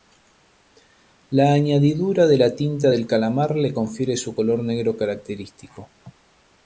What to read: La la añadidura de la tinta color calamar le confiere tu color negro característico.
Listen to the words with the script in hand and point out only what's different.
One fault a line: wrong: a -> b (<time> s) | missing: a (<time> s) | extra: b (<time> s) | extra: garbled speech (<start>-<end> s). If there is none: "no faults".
missing: la (1.5 s)
wrong: color -> del (2.9 s)
wrong: tu -> su (4.2 s)